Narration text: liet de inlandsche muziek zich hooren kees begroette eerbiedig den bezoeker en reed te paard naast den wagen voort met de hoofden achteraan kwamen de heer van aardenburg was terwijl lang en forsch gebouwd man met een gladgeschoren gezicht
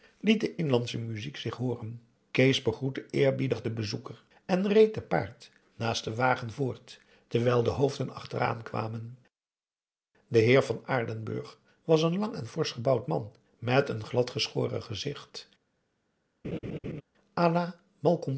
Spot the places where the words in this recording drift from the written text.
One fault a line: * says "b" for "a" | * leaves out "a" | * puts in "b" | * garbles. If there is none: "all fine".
* says "terwijl" for "met"
* says "een" for "terwijl"